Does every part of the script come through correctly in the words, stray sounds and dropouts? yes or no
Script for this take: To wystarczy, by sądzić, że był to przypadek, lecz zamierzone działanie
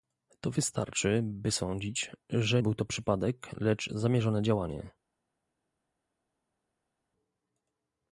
yes